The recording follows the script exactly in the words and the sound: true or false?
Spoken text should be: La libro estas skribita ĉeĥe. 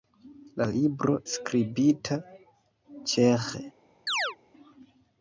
false